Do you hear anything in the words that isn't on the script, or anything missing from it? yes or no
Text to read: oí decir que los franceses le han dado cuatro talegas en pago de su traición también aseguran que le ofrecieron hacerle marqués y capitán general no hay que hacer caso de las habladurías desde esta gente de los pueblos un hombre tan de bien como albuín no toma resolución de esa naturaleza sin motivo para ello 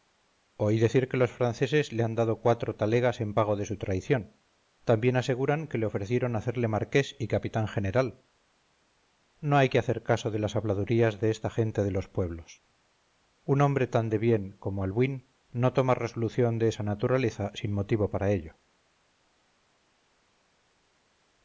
yes